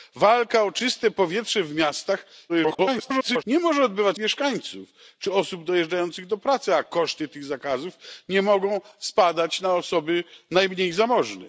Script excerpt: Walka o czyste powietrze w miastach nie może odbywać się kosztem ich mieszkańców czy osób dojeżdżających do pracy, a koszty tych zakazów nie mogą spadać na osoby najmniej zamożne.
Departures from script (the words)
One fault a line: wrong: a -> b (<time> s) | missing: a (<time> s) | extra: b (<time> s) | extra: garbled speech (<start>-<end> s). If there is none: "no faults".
extra: garbled speech (2.5-3.4 s)
missing: się kosztem ich (4.2 s)